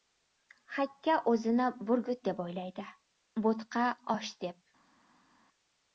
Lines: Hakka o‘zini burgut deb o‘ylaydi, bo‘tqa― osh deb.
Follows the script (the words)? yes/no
yes